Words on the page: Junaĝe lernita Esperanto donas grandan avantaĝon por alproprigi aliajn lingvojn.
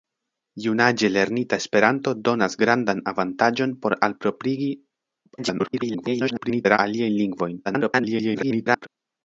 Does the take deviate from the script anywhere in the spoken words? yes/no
yes